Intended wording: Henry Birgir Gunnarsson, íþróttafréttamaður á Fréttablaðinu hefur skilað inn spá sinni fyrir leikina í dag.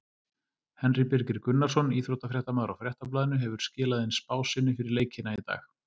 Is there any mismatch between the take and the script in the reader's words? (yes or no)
no